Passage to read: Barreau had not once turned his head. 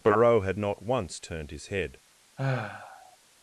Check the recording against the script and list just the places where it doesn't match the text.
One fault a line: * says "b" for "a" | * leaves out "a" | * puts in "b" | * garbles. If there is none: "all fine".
all fine